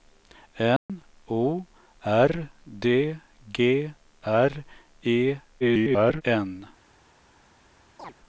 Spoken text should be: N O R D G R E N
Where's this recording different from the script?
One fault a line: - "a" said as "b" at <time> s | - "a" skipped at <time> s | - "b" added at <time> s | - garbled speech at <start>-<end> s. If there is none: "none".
- garbled speech at 5.6-6.2 s